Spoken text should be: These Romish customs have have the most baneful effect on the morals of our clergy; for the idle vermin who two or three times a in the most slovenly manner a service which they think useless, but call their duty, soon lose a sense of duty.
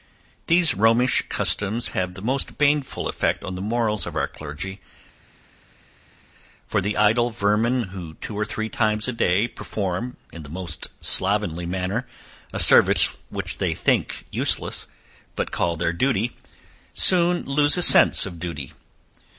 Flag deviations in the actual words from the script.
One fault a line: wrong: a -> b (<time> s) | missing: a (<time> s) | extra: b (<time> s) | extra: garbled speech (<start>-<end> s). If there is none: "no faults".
missing: have (2.1 s)
extra: day perform (9.1 s)